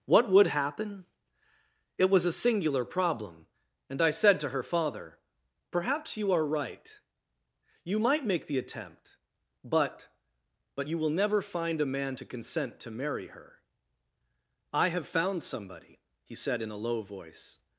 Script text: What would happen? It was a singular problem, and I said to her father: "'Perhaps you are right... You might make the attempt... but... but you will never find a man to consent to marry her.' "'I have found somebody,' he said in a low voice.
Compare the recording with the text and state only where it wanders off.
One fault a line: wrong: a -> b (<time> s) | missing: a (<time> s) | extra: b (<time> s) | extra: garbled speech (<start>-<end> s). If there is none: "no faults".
no faults